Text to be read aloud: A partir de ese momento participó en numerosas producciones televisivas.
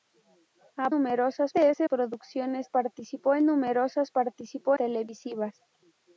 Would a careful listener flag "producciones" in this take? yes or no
yes